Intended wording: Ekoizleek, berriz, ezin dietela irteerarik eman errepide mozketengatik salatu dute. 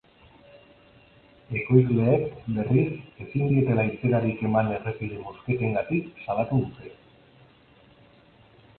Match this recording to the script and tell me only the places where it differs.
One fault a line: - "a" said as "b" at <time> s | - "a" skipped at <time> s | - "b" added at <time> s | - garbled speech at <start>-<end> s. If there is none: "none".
none